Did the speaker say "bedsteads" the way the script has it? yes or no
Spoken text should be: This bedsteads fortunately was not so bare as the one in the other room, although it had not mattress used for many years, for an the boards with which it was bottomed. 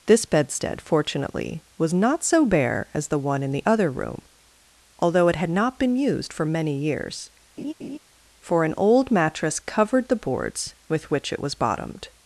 no